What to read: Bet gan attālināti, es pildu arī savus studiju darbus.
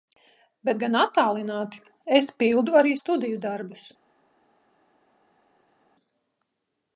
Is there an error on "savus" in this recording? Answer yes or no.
yes